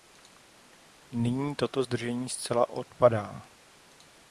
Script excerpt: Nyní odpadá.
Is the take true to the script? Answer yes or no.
no